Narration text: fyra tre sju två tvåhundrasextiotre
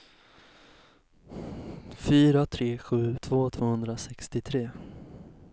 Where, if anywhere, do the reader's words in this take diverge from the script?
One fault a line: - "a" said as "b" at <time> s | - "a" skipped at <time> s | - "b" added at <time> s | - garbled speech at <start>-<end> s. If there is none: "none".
none